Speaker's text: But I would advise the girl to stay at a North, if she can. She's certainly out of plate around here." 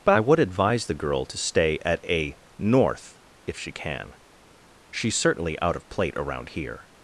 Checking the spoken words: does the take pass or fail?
pass